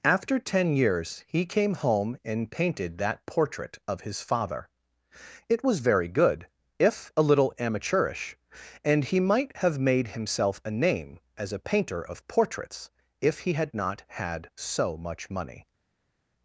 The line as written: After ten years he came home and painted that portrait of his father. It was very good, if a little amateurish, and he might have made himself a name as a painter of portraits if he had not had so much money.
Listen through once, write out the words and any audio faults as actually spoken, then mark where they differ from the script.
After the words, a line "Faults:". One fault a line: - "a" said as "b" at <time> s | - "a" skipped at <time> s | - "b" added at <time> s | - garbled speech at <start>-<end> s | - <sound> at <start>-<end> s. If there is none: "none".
After ten years he came home and painted that portrait of his father. It was very good, if a little amateurish, and he might have made himself a name as a painter of portraits if he had not had so much money.
Faults:
none